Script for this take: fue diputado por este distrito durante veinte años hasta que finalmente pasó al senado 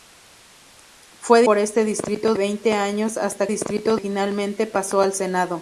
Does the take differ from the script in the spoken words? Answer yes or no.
yes